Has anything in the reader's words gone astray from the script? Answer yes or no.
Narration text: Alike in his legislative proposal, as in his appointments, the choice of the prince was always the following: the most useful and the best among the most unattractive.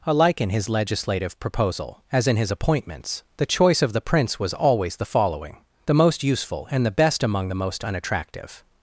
no